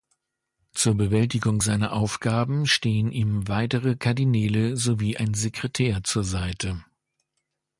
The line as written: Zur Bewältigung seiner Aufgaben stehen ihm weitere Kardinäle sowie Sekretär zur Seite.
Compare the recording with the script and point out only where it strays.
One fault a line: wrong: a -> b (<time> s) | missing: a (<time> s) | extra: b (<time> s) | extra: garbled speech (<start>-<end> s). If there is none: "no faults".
extra: ein (5.1 s)